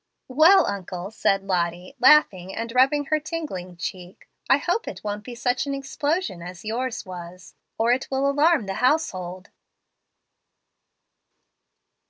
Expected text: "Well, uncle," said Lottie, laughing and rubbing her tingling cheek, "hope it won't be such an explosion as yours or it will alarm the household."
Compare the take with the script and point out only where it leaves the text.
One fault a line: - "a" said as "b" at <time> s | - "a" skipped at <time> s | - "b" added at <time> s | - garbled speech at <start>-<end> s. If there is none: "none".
- "I" added at 4.5 s
- "was" added at 7.1 s